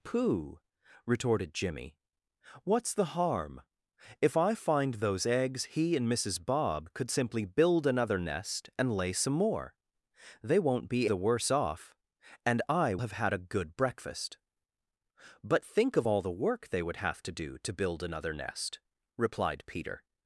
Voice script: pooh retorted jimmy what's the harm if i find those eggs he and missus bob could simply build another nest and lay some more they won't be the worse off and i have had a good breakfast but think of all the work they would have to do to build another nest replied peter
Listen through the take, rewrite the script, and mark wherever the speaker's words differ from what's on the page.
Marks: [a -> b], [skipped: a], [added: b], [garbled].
pooh retorted jimmy what's the harm if i find those eggs he and missus bob could simply build another nest and lay some more they won't be the worse off and i have had a good breakfast but think of all the work they would have to do to build another nest replied peter